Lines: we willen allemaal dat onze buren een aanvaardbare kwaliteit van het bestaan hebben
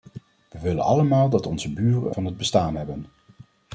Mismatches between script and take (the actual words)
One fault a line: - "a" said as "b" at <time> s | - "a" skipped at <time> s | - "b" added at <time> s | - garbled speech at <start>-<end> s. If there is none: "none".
- "een aanvaardbare kwaliteit" skipped at 2.1 s